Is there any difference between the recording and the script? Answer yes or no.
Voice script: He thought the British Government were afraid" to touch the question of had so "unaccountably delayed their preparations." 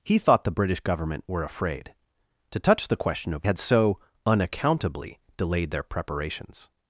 no